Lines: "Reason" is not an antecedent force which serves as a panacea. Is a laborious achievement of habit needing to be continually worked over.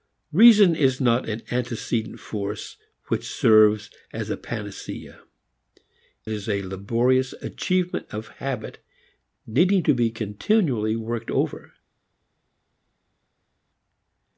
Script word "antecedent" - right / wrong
right